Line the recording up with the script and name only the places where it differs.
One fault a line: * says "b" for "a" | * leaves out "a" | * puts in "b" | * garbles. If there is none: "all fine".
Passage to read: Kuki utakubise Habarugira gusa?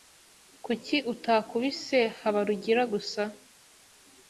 all fine